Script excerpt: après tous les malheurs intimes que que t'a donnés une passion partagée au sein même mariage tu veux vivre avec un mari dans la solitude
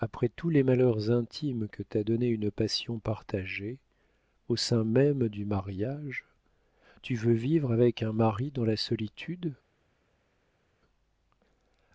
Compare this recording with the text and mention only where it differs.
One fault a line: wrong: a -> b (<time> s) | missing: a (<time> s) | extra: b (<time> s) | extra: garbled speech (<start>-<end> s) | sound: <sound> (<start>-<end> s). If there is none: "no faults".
missing: que (1.8 s)
extra: du (5.3 s)